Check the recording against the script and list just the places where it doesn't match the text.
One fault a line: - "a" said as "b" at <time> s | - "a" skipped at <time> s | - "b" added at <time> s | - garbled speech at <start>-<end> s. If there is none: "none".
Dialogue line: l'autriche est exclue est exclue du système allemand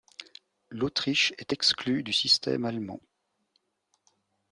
- "est exclue" skipped at 2.0 s